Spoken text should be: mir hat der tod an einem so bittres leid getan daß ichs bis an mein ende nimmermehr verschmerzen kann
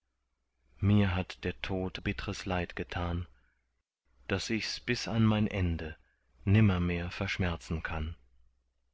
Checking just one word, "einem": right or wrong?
wrong